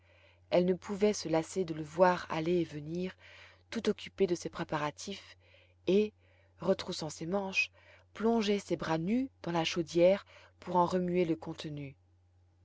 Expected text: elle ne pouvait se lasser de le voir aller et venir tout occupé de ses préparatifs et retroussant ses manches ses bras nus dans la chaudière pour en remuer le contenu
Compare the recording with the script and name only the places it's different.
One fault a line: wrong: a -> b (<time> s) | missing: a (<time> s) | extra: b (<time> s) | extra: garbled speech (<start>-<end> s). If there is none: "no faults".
extra: plonger (8.2 s)